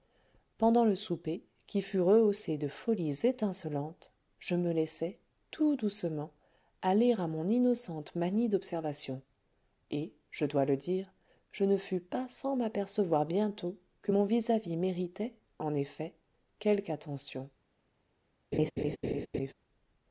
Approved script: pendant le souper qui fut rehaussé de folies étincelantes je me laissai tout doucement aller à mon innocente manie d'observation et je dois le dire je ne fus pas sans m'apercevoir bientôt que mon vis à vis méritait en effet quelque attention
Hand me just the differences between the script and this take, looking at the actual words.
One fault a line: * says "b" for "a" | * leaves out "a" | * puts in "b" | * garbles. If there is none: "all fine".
all fine